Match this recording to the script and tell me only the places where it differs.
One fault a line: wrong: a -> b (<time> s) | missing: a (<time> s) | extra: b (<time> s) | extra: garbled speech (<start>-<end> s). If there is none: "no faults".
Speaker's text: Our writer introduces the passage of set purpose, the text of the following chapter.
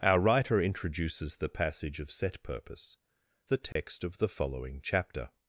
no faults